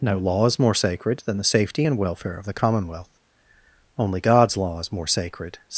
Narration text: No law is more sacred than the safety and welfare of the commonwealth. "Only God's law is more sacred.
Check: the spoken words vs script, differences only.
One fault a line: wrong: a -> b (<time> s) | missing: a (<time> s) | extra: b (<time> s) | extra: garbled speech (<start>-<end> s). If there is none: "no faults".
no faults